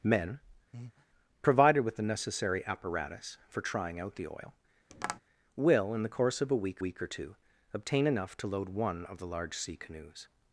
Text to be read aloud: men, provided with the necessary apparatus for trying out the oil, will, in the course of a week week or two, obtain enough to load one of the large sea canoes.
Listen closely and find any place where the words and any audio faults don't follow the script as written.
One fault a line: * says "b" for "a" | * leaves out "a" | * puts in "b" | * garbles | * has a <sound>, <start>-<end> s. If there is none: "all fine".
* has a breath, 0.7-1.1 s
* has a tap, 4.9-5.2 s